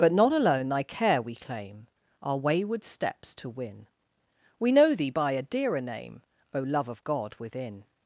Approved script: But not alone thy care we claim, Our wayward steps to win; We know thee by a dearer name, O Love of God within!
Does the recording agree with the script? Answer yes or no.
yes